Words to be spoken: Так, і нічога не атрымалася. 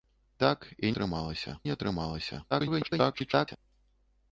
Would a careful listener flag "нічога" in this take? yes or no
yes